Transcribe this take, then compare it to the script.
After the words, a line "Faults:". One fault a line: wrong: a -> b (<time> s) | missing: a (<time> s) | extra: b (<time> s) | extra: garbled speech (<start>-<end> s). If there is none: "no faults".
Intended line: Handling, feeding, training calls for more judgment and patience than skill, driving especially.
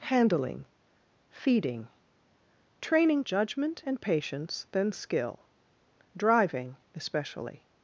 Handling, feeding, training judgment and patience than skill, driving especially.
Faults:
missing: calls for more (3.2 s)